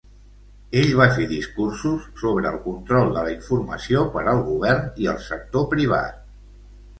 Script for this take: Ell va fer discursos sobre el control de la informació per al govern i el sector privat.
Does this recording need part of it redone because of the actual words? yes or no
no